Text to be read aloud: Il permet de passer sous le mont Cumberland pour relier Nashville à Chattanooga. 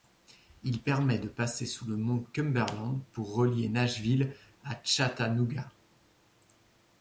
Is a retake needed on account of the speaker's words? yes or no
no